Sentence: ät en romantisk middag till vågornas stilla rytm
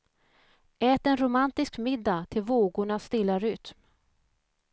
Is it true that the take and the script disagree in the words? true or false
false